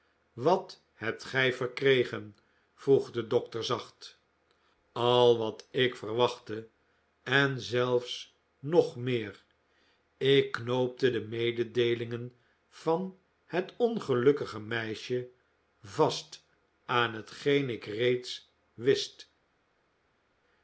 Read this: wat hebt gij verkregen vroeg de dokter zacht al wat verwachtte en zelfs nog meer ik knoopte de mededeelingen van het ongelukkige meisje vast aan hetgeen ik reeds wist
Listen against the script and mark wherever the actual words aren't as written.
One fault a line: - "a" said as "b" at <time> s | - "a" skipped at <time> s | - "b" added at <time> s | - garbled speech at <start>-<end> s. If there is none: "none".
- "ik" added at 5.7 s